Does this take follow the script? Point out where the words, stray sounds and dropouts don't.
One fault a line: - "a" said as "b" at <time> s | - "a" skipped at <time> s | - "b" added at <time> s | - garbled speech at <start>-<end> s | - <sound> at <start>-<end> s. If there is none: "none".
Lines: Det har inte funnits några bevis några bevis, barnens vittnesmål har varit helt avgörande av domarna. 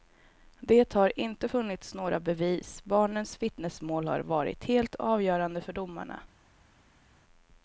- "några bevis" skipped at 2.8 s
- "av" said as "för" at 5.6 s